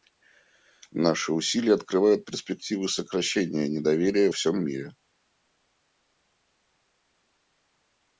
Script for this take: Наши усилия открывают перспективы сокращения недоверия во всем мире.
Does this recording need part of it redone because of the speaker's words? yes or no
yes